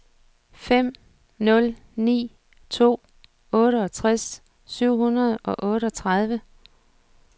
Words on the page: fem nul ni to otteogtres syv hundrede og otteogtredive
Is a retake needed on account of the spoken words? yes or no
no